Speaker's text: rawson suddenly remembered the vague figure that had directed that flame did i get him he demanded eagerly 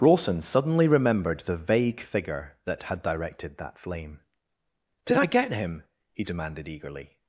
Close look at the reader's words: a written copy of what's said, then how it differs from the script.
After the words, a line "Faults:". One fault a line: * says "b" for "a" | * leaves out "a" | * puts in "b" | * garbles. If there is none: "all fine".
rawson suddenly remembered the vague figure that had directed that flame did i get him he demanded eagerly
Faults:
all fine